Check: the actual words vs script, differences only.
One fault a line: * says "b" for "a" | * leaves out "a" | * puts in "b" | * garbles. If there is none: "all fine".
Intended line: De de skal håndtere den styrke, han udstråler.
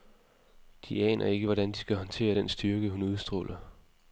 * puts in "aner ikke hvordan"
* says "hun" for "han"